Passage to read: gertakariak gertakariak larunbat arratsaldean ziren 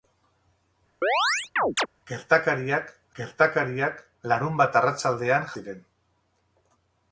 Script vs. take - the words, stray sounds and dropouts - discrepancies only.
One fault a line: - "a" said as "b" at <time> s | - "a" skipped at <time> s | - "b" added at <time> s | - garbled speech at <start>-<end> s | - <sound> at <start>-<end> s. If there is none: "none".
- chirp at 1.0-1.9 s